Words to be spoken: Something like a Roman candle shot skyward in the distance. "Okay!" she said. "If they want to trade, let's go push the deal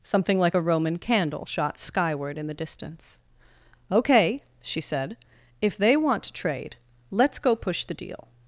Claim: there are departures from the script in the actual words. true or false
false